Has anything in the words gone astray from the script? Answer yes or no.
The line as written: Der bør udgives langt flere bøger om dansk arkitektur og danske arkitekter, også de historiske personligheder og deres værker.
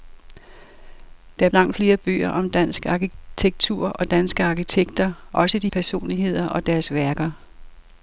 yes